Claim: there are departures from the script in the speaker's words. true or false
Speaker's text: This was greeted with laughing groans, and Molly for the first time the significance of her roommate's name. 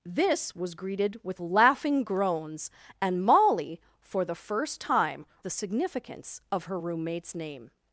false